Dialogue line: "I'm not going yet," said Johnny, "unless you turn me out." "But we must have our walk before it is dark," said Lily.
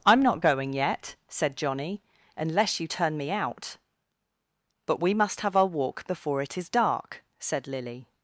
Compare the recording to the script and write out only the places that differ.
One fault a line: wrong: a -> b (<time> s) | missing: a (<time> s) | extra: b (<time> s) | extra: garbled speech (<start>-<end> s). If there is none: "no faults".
no faults